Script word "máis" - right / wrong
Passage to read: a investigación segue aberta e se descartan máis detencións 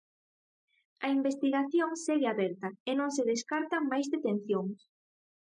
right